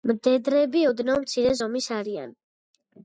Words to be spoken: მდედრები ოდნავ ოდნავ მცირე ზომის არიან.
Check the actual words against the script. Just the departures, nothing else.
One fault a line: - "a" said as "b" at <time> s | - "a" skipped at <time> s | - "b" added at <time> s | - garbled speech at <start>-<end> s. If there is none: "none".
- "ოდნავ" skipped at 1.2 s